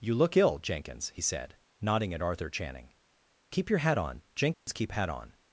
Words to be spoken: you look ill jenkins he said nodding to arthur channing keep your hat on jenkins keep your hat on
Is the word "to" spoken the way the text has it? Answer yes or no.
no